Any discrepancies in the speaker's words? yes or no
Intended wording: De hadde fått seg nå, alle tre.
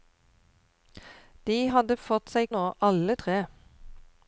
no